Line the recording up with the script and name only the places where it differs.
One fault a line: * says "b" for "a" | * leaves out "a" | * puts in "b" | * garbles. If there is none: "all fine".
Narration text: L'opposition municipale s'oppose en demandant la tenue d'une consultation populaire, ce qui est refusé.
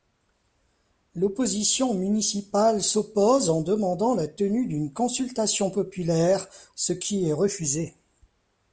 all fine